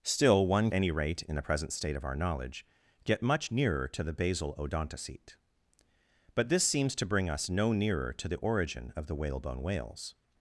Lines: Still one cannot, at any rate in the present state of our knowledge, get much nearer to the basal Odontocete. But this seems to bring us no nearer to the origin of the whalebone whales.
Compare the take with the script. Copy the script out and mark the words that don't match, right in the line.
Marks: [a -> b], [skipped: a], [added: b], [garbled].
Still one [skipped: cannot, at] any rate in the present state of our knowledge, get much nearer to the basal Odontocete. But this seems to bring us no nearer to the origin of the whalebone whales.